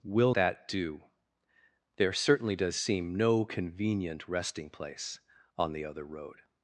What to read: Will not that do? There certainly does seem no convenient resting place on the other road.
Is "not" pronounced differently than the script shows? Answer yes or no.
yes